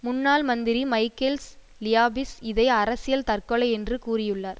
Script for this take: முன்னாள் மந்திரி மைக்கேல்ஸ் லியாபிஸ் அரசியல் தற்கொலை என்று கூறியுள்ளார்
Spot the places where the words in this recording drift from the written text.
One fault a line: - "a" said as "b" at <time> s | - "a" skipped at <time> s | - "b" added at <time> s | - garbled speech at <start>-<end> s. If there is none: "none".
- "இதை" added at 2.4 s